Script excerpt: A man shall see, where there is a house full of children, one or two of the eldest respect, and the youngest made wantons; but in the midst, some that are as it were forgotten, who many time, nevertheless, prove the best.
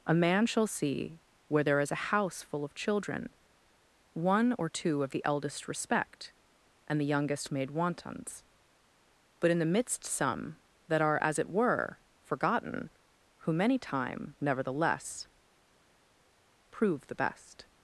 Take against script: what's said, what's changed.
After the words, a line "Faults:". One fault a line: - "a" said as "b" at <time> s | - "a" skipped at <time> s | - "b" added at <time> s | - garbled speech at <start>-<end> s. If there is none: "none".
A man shall see, where there is a house full of children, one or two of the eldest respect, and the youngest made wantons; but in the midst, some that are as it were forgotten, who many time, nevertheless, prove the best.
Faults:
none